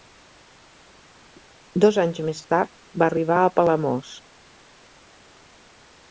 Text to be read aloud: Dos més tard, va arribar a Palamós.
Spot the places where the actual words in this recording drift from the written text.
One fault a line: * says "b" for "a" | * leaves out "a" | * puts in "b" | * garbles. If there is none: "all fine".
* puts in "anys"